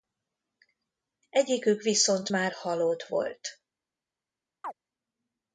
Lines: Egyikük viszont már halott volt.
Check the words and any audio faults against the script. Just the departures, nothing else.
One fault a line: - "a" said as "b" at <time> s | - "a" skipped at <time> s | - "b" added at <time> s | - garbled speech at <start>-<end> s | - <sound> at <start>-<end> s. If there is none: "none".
- chirp at 4.6-4.7 s